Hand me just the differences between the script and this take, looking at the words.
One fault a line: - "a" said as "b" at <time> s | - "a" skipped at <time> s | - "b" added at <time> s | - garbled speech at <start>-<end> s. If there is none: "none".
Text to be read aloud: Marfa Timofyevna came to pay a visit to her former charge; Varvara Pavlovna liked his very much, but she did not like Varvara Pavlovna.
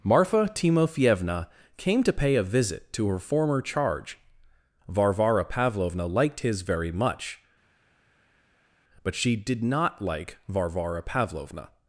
none